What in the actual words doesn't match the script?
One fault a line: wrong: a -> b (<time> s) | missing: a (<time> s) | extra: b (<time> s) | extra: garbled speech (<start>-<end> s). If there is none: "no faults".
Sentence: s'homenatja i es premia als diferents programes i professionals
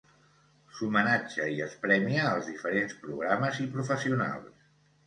no faults